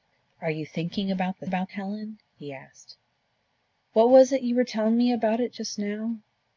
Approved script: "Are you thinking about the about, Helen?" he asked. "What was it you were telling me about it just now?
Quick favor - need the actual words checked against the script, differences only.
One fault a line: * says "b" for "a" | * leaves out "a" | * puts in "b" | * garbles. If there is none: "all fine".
all fine